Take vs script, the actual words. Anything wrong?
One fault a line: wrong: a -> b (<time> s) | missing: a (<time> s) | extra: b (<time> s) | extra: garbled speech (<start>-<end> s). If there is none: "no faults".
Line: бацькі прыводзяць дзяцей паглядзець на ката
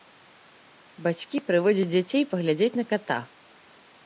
no faults